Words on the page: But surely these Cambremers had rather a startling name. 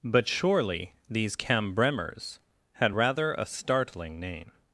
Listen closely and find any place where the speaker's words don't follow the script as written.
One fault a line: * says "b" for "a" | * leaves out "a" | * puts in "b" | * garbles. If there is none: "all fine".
all fine